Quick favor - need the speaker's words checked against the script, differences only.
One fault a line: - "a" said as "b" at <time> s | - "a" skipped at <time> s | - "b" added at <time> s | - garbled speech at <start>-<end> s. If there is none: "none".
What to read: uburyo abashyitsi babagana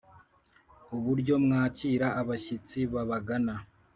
- "mwakira" added at 1.4 s